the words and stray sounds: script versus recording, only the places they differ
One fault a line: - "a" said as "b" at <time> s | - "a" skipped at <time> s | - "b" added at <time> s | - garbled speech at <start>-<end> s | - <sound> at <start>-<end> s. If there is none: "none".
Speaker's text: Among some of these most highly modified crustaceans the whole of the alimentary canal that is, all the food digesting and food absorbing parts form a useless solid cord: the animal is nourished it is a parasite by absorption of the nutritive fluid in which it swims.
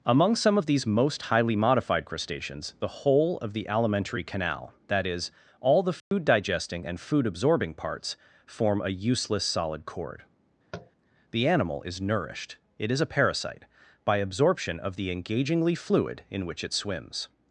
- dropout at 6.0-6.1 s
- tap at 10.7-10.9 s
- "nutritive" said as "engagingly" at 15.1 s